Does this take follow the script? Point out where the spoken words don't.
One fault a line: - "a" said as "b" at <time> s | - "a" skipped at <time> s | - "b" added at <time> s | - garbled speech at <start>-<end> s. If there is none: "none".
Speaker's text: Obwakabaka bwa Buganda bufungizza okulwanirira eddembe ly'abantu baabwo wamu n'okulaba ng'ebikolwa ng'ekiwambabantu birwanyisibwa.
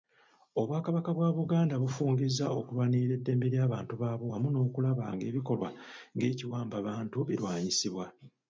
none